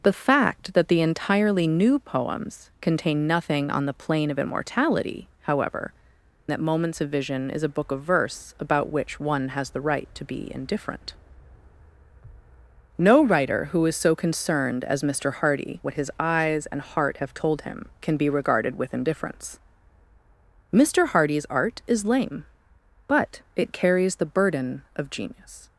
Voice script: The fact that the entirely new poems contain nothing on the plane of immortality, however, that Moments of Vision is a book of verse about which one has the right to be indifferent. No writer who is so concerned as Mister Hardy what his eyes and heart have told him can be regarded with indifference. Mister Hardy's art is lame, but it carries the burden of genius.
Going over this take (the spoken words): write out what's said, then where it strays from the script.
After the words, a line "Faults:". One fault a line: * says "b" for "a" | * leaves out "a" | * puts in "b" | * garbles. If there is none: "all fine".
The fact that the entirely new poems contain nothing on the plane of immortality, however, that Moments of Vision is a book of verse about which one has the right to be indifferent. No writer who is so concerned as Mister Hardy what his eyes and heart have told him can be regarded with indifference. Mister Hardy's art is lame, but it carries the burden of genius.
Faults:
all fine